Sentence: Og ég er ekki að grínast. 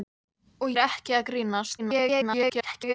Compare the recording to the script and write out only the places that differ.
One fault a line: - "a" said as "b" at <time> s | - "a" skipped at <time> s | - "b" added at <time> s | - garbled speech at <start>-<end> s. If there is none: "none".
- "ég" skipped at 0.7 s
- garbled speech at 1.8-2.9 s